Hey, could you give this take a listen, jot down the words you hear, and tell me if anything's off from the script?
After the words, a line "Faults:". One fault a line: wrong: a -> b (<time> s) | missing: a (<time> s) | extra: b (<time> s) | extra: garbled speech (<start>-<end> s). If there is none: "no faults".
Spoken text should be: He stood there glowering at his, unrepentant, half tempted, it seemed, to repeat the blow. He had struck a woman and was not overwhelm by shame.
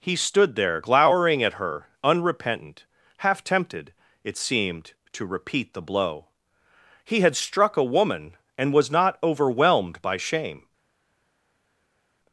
He stood there glowering at her, unrepentant, half tempted, it seemed, to repeat the blow. He had struck a woman and was not overwhelmed by shame.
Faults:
wrong: his -> her (1.5 s)
wrong: overwhelm -> overwhelmed (9.2 s)